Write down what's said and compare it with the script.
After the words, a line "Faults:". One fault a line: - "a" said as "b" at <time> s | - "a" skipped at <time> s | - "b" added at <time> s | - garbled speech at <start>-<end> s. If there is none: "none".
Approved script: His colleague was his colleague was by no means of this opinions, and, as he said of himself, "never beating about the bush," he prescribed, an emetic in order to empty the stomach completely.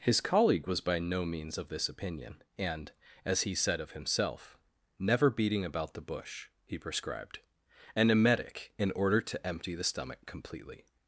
His colleague was by no means of this opinion, and, as he said of himself, "never beating about the bush," he prescribed, an emetic in order to empty the stomach completely.
Faults:
- "his colleague was" skipped at 0.8 s
- "opinions" said as "opinion" at 1.9 s